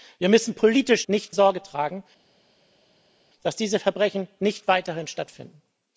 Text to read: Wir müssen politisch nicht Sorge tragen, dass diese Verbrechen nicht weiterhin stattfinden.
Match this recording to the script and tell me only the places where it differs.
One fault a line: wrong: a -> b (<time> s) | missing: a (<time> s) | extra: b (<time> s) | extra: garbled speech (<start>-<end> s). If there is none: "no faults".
no faults